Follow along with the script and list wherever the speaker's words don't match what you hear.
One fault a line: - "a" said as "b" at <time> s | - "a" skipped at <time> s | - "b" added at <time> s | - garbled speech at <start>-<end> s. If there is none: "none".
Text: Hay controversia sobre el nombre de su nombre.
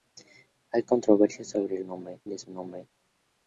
none